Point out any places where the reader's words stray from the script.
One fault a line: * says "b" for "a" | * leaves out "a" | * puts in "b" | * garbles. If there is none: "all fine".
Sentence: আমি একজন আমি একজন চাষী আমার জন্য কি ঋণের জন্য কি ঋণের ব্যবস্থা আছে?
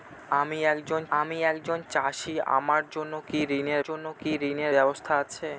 all fine